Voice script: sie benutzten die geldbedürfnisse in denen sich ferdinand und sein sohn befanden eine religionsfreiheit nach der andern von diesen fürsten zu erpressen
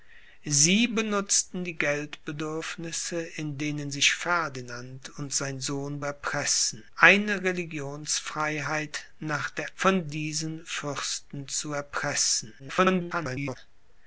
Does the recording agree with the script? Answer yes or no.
no